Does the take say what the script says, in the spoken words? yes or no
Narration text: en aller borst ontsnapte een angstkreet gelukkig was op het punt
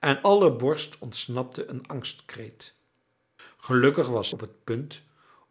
yes